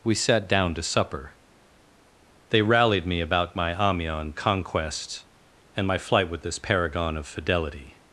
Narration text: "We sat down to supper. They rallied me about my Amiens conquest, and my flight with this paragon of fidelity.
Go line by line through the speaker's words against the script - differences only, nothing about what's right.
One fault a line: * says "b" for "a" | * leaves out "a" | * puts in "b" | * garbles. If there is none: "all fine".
all fine